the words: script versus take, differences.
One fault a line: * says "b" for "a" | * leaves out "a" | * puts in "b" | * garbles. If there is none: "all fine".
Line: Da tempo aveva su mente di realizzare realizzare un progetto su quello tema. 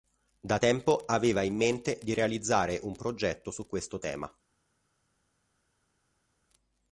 * says "in" for "su"
* leaves out "realizzare"
* says "questo" for "quello"